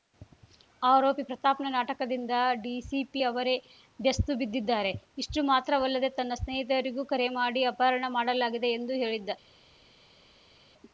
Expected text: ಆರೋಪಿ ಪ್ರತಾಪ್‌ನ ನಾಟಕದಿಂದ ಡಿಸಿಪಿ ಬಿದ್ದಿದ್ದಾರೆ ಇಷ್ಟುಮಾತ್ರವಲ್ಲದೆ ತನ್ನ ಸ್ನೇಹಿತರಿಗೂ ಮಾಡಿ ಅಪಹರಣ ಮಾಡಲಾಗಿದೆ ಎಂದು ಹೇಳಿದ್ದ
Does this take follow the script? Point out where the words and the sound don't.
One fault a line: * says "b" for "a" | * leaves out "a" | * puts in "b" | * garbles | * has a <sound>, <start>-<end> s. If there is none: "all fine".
* puts in "ಅವರೇ ಬೆಸ್ತು"
* puts in "ಕರೆ"